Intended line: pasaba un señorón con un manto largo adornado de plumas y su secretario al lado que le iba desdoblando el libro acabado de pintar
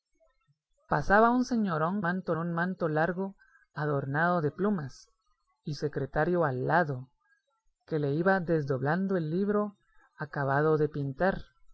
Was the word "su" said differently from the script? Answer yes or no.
yes